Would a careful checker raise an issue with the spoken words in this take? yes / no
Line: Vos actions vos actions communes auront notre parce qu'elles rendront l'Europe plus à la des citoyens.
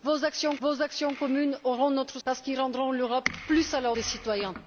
no